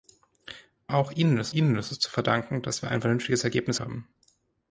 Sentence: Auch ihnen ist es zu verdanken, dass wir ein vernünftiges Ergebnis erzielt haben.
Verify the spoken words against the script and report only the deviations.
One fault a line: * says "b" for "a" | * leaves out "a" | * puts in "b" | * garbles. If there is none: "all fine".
* puts in "ihnen ist"
* leaves out "erzielt"